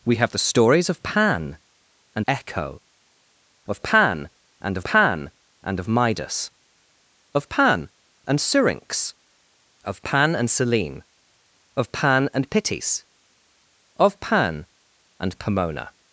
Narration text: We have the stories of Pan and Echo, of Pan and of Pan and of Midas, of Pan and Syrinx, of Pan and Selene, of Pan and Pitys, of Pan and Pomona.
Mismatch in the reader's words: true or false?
false